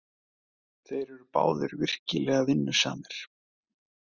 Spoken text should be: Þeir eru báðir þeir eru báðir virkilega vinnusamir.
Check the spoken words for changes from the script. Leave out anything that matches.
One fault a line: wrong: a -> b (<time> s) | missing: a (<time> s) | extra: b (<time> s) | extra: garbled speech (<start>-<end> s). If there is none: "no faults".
missing: þeir eru báðir (1.8 s)